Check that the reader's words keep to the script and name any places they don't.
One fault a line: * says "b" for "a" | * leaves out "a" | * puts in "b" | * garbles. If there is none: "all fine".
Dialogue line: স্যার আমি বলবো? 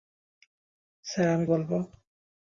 all fine